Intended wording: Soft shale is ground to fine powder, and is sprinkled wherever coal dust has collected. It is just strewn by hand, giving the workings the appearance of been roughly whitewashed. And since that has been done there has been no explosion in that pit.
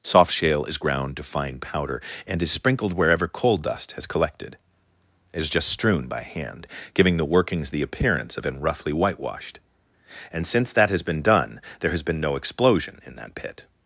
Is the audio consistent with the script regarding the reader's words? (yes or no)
yes